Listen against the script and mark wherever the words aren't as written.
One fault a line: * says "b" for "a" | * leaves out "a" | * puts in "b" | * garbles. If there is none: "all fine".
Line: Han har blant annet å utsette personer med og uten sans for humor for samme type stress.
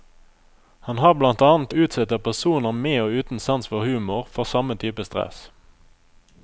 all fine